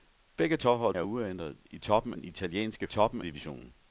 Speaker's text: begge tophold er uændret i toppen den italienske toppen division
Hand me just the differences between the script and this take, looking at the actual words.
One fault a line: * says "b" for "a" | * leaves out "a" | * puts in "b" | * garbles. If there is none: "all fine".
all fine